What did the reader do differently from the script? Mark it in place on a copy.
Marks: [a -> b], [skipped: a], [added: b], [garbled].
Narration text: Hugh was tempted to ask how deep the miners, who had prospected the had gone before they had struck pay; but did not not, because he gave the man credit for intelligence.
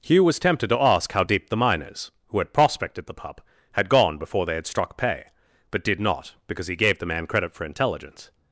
Hugh was tempted to ask how deep the miners, who had prospected the [added: pup] had gone before they had struck pay; but did not [skipped: not,] because he gave the man credit for intelligence.